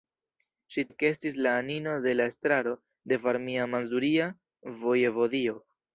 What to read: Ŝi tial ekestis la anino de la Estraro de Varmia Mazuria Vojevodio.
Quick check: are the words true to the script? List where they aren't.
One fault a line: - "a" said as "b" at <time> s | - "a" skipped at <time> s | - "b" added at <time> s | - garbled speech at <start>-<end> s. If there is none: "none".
- "tial" skipped at 0.8 s